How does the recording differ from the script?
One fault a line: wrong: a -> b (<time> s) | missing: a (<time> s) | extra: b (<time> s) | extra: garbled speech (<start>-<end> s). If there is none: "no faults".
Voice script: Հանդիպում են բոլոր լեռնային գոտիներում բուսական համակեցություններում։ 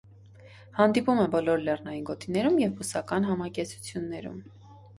extra: և (2.7 s)